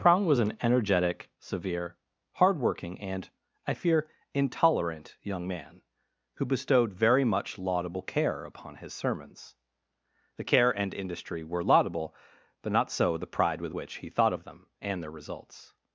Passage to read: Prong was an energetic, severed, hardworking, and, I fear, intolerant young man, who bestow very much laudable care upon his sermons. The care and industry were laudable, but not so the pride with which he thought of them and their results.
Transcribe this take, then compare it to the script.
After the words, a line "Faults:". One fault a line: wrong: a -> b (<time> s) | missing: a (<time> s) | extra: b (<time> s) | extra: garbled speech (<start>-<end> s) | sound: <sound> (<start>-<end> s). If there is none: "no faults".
Prong was an energetic, severe, hardworking, and, I fear, intolerant young man, who bestowed very much laudable care upon his sermons. The care and industry were laudable, but not so the pride with which he thought of them and their results.
Faults:
wrong: severed -> severe (1.4 s)
wrong: bestow -> bestowed (6.5 s)